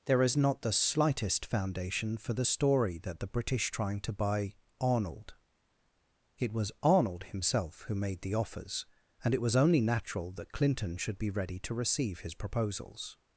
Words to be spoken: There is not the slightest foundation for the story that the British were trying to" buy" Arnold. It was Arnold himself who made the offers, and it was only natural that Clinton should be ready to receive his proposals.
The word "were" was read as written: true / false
false